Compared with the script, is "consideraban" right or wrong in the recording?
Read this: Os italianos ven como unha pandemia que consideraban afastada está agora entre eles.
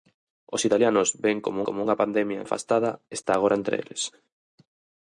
wrong